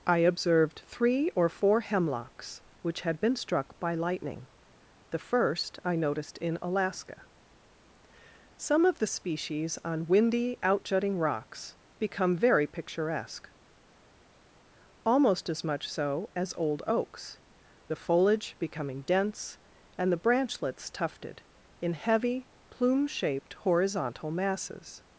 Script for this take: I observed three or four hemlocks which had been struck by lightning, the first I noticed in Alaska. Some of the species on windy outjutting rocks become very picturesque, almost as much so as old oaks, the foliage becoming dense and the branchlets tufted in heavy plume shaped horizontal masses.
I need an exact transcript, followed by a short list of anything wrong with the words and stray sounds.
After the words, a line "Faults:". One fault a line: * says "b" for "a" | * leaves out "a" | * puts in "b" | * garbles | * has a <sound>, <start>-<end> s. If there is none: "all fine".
I observed three or four hemlocks which had been struck by lightning, the first I noticed in Alaska. Some of the species on windy outjutting rocks become very picturesque, almost as much so as old oaks, the foliage becoming dense and the branchlets tufted in heavy plume shaped horizontal masses.
Faults:
all fine